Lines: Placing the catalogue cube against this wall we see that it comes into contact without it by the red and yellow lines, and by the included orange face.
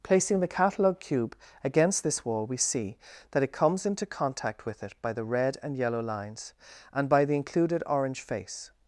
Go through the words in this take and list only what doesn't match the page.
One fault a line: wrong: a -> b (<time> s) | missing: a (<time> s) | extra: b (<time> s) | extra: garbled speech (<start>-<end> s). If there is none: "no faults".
wrong: without -> with (4.6 s)